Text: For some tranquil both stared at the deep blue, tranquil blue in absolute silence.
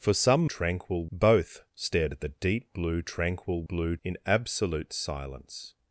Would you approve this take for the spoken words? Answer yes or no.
yes